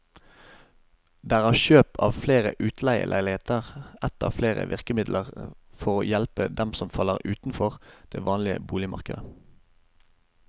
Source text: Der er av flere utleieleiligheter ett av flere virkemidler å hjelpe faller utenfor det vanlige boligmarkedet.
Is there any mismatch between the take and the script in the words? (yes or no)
yes